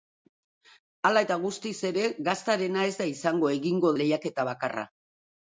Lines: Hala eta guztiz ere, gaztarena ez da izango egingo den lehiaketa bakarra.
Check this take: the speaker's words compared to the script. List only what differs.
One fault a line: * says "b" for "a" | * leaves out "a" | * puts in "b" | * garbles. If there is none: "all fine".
* leaves out "den"